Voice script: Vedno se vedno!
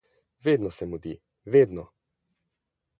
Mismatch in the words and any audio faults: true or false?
true